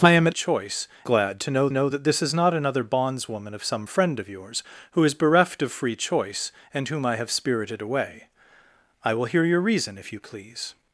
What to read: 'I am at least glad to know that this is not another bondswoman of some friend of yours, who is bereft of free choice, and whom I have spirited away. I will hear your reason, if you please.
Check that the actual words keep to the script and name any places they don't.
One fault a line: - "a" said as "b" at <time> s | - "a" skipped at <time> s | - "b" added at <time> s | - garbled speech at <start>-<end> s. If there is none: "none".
- "least" said as "choice" at 0.3 s
- "know" added at 1.7 s